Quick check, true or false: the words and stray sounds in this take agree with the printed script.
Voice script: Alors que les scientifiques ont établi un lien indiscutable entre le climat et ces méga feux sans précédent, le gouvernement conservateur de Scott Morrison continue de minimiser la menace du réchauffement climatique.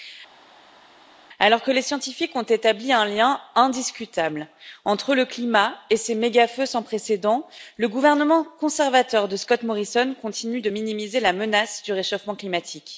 true